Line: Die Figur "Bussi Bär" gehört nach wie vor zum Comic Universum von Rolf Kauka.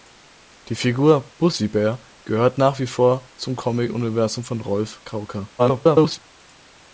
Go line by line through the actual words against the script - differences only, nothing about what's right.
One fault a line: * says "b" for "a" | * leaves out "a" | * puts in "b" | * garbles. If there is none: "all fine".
* garbles